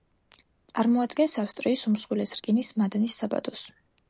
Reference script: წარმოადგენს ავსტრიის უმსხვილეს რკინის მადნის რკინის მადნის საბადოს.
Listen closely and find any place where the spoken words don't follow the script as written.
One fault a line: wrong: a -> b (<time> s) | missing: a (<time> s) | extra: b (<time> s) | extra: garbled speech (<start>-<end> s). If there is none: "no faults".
missing: რკინის მადნის (3.2 s)